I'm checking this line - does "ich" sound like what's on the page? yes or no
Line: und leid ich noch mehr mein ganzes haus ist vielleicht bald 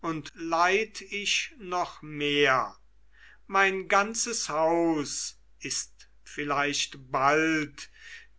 yes